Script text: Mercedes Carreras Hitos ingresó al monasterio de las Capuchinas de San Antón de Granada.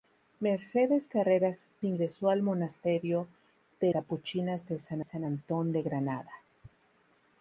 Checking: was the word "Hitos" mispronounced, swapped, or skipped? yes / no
yes